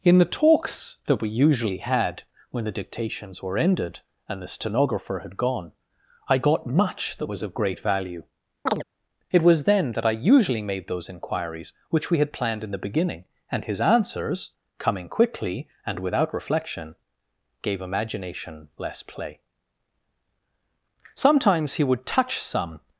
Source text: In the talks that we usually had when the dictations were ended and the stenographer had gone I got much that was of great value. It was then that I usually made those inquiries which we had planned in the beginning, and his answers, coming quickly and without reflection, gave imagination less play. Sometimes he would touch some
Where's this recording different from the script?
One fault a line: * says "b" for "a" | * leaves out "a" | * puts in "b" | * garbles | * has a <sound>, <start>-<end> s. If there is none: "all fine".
* has a chirp, 8.7-8.8 s